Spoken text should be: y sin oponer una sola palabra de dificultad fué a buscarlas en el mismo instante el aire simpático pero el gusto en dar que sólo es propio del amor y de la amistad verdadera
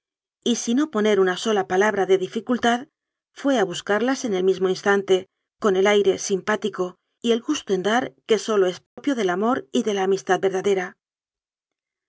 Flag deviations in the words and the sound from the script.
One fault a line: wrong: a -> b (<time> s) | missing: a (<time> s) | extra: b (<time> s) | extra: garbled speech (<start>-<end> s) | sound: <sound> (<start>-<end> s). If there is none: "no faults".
extra: con (5.6 s)
wrong: pero -> y (7.2 s)
sound: dropout (8.9-9.0 s)